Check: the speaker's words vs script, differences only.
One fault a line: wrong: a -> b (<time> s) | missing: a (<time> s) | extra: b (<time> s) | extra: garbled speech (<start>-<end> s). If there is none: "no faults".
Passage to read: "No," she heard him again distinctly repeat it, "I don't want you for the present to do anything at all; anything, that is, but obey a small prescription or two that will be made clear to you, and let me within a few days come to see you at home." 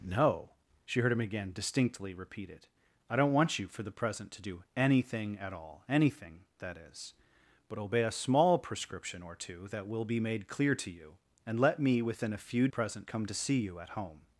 wrong: days -> present (12.7 s)